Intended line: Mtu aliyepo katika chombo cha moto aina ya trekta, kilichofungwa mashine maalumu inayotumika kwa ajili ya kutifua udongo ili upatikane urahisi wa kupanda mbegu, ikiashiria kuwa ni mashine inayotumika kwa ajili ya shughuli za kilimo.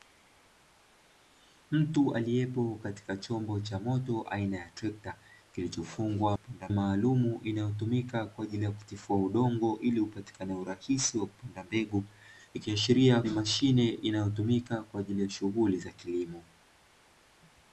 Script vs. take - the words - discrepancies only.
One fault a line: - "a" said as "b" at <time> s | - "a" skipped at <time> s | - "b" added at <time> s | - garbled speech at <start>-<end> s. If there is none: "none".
- "mashine" said as "kupanda" at 6.3 s
- "kuwa" skipped at 13.2 s